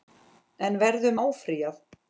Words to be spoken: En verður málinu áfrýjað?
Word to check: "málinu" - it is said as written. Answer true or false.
false